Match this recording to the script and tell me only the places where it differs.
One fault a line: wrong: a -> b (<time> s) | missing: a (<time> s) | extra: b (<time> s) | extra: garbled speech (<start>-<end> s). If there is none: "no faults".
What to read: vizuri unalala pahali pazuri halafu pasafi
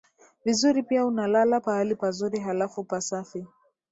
extra: pia (0.8 s)